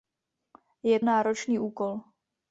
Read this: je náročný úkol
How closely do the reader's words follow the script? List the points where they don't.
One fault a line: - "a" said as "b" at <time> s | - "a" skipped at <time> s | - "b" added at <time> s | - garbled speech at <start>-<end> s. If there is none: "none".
none